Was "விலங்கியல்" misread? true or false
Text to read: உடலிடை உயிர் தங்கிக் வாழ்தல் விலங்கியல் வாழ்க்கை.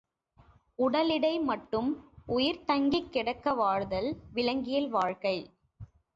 false